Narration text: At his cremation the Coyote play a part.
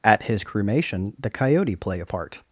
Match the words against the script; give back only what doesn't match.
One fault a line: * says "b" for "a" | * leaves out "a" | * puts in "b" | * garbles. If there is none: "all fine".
all fine